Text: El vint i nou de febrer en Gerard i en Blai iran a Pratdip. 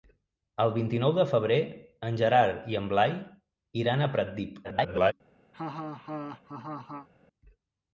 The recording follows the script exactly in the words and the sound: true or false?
false